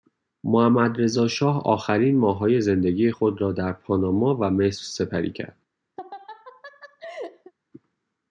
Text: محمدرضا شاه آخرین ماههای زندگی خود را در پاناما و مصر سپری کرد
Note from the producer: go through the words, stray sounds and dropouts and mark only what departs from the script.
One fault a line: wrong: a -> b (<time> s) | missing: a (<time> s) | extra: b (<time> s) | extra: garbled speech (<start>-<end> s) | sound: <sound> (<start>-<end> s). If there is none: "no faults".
sound: laugh (6.0-7.5 s)